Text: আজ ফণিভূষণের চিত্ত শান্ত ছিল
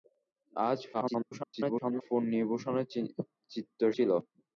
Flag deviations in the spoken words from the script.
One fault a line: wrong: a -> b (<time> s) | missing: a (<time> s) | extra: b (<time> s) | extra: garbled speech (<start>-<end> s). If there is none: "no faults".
extra: garbled speech (0.9-2.0 s)
missing: শান্ত (3.8 s)